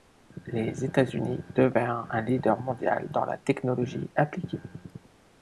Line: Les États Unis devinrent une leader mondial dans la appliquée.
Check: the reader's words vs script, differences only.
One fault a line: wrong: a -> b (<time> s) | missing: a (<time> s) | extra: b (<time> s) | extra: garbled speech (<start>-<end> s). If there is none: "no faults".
wrong: une -> un (2.1 s)
extra: technologie (3.4 s)